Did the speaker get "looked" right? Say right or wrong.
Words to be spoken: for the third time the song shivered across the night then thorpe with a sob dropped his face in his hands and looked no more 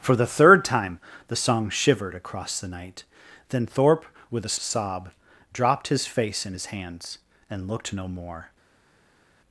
right